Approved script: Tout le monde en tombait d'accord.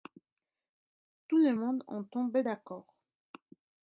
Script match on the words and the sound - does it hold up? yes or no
yes